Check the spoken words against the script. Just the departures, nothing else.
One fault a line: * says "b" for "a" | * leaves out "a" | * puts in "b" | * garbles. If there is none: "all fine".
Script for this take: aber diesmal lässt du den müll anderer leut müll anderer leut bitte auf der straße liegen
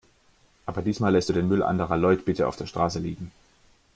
* leaves out "müll anderer leut"